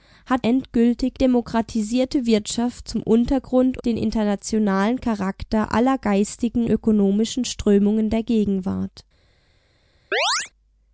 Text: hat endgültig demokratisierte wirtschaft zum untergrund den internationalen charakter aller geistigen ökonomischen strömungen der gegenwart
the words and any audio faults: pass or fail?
fail